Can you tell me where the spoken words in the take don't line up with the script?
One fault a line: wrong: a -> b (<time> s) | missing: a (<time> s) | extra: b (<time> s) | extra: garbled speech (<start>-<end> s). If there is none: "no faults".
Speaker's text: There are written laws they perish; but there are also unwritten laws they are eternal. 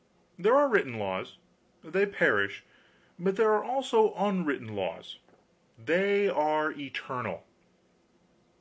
no faults